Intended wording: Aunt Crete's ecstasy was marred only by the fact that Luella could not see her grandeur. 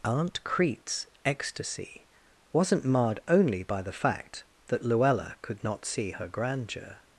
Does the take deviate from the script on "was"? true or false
true